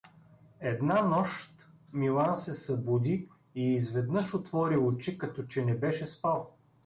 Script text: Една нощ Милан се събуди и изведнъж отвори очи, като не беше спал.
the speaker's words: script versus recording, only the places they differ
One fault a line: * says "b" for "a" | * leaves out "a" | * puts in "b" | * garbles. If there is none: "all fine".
* puts in "че"